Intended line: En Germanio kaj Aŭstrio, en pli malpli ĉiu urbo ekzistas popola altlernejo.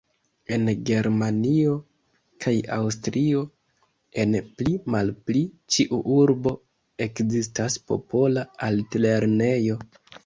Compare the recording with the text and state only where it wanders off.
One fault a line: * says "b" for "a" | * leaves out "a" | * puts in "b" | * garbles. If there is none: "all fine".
all fine